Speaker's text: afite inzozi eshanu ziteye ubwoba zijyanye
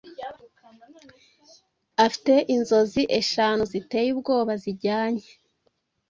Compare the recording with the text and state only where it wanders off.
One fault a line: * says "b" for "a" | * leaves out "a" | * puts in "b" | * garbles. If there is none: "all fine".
all fine